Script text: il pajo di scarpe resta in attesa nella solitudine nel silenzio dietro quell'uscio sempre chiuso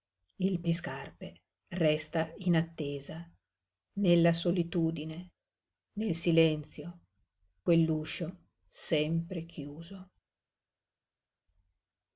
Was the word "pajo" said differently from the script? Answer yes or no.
yes